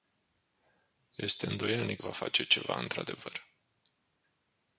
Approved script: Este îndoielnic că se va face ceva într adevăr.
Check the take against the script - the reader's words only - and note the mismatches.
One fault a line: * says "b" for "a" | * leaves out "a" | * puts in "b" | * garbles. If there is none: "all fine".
* leaves out "că se"